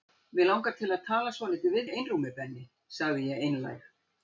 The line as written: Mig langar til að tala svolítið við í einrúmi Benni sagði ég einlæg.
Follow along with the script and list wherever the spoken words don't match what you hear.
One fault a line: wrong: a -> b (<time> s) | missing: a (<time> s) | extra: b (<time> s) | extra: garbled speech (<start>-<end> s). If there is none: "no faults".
no faults